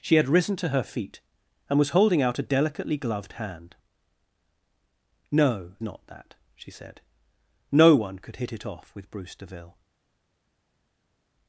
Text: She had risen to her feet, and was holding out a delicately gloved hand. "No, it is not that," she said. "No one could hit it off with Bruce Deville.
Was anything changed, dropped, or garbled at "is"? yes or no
yes